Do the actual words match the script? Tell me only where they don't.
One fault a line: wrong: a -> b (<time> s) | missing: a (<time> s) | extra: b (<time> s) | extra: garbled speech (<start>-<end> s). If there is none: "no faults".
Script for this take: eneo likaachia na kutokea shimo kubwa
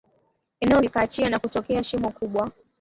no faults